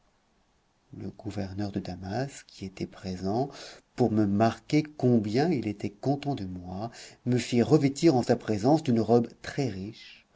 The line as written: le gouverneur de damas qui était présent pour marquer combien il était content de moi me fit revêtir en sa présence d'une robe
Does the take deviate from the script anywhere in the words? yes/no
yes